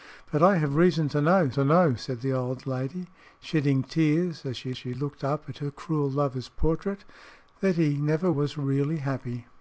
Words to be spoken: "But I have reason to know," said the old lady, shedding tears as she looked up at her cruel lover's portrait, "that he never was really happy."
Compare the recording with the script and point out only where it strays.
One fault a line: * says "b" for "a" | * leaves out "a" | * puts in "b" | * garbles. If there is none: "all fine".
* puts in "to know"
* puts in "she"